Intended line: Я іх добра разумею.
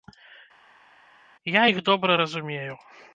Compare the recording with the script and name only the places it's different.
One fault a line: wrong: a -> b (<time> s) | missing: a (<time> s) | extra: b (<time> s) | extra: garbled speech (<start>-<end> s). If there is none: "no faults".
no faults